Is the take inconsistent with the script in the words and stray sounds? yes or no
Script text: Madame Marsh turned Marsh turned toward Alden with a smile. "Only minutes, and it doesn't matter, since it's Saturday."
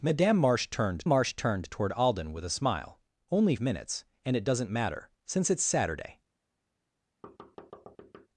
yes